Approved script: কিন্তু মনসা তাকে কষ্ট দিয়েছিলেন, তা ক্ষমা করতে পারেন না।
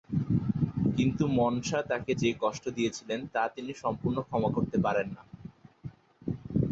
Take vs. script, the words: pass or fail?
fail